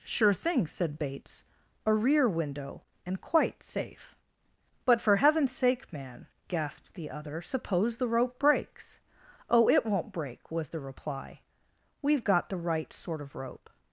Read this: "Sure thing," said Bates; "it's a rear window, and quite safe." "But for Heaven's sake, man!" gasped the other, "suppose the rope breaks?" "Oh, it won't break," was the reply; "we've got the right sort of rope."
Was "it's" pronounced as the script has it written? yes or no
no